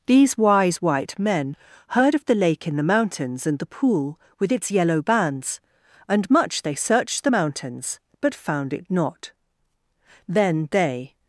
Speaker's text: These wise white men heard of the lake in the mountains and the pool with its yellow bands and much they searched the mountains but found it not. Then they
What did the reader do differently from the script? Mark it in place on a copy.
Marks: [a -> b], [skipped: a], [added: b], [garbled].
These wise white men heard of the lake in the mountains and the pool with its yellow bands and much they searched the mountains but found it not. Then they